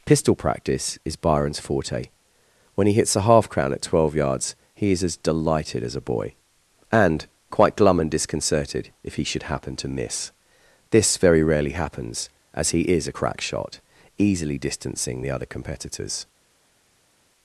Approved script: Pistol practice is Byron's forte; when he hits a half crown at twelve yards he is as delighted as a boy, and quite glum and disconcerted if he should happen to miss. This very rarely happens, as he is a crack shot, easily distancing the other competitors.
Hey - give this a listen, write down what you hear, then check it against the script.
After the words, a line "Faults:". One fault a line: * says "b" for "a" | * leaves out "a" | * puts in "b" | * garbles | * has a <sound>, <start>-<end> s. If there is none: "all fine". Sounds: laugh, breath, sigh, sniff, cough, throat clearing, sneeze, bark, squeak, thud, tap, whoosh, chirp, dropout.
Pistol practice is Byron's forte; when he hits a half crown at twelve yards he is as delighted as a boy, and quite glum and disconcerted if he should happen to miss. This very rarely happens, as he is a crack shot, easily distancing the other competitors.
Faults:
all fine